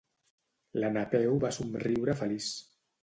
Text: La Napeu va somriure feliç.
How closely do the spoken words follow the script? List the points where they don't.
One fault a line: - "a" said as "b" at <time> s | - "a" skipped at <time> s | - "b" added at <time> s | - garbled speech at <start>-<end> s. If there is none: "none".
none